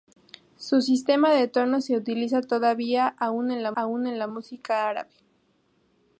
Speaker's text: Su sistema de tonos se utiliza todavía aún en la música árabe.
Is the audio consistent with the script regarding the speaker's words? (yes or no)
no